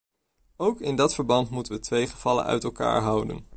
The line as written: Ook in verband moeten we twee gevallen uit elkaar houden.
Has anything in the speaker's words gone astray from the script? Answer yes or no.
yes